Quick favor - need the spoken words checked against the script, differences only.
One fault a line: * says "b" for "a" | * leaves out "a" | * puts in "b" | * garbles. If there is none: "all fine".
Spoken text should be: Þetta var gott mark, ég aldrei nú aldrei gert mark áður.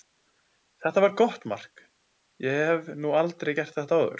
* says "hef" for "aldrei"
* says "þetta" for "mark"